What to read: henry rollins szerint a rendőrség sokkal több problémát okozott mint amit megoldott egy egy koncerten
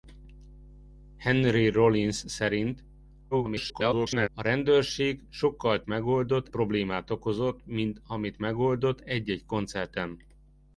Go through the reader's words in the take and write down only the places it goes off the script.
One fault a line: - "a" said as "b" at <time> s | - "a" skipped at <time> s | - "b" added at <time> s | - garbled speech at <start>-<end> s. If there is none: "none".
- garbled speech at 3.3-4.3 s
- "több" said as "megoldott" at 5.9 s